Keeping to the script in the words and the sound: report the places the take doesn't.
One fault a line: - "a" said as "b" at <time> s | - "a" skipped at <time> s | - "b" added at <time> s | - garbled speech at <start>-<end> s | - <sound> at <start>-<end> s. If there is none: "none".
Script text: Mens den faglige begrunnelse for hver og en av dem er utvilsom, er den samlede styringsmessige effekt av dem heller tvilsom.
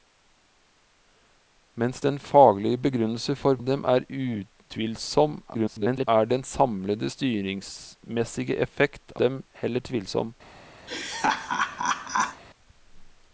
- "hver og en" skipped at 3.6 s
- garbled speech at 5.5-6.1 s
- "av" skipped at 9.2 s
- laugh at 10.9-12.4 s